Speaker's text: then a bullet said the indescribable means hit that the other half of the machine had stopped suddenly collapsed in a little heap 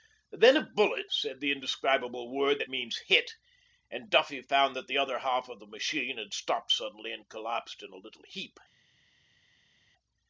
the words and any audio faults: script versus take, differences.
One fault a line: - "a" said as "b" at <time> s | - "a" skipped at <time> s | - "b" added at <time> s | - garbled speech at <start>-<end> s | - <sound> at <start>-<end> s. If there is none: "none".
- "word that" added at 2.3 s
- "and duffy found" added at 3.9 s
- "and" added at 7.1 s